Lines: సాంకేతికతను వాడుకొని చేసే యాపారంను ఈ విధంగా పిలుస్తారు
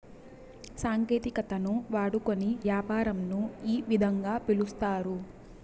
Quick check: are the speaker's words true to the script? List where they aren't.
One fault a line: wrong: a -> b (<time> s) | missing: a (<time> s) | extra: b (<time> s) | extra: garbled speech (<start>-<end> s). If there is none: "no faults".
missing: చేసే (2.5 s)